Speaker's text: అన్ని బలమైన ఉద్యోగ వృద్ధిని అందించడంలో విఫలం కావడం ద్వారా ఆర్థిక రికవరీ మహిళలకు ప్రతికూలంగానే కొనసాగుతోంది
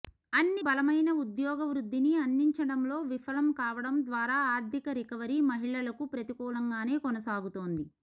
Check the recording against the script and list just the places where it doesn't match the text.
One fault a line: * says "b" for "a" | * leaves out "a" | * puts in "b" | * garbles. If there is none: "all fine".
all fine